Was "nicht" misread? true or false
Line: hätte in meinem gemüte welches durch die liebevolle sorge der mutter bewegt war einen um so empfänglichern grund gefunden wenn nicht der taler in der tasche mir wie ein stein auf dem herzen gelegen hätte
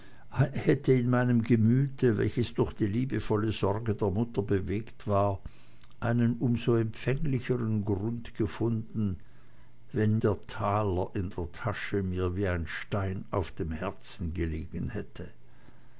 true